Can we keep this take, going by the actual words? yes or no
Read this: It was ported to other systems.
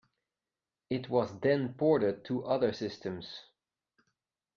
no